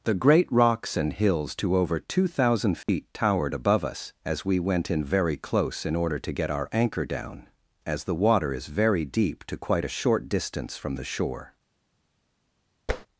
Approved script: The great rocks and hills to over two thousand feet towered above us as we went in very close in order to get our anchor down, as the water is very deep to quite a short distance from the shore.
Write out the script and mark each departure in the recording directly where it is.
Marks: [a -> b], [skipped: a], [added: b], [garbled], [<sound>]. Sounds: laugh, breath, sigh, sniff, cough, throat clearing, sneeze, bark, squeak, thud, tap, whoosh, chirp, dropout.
The great rocks and hills to over two thousand feet [dropout] towered above us as we went in very close in order to get our anchor down, as the water is very deep to quite a short distance from the shore. [tap]